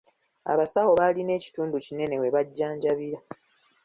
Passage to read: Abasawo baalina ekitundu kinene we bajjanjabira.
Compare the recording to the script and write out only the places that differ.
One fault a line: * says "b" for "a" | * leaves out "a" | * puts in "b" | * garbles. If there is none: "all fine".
all fine